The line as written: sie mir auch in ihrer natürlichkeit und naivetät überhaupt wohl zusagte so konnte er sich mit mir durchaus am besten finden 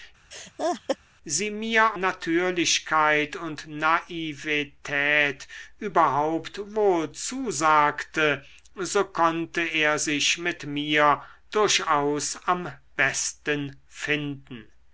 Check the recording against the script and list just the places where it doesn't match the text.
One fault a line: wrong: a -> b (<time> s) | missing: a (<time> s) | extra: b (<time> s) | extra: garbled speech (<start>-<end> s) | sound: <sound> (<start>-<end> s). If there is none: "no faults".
sound: laugh (0.3-1.0 s)
missing: auch in ihrer (2.0 s)